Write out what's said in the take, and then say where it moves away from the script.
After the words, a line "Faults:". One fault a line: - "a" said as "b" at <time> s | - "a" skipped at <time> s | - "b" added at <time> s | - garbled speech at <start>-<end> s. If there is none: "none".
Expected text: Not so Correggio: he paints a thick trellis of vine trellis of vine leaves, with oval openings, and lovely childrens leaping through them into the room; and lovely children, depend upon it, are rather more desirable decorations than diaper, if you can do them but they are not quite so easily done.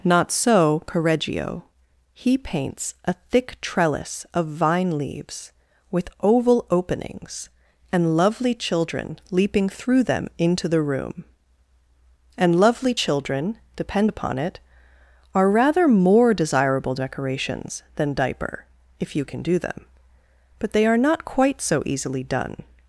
Not so Correggio: he paints a thick trellis of vine leaves, with oval openings, and lovely children leaping through them into the room; and lovely children, depend upon it, are rather more desirable decorations than diaper, if you can do them but they are not quite so easily done.
Faults:
- "trellis of vine" skipped at 5.0 s
- "childrens" said as "children" at 8.6 s